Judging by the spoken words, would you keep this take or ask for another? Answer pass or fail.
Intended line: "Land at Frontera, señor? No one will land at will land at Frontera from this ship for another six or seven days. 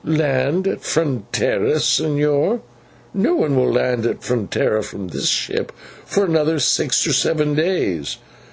fail